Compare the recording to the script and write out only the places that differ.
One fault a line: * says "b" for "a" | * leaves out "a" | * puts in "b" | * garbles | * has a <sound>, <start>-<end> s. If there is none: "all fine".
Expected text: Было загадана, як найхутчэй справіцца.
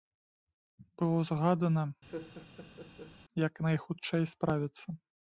* has a laugh, 2.1-3.2 s